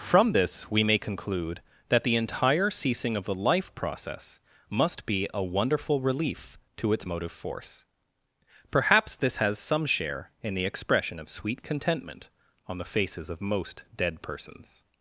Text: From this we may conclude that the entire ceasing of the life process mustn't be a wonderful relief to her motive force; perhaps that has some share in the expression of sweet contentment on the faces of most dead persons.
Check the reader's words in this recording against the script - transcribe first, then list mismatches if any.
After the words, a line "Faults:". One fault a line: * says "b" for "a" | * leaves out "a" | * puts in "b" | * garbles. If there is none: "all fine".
From this we may conclude that the entire ceasing of the life process must be a wonderful relief to its motive force; perhaps this has some share in the expression of sweet contentment on the faces of most dead persons.
Faults:
* says "must" for "mustn't"
* says "its" for "her"
* says "this" for "that"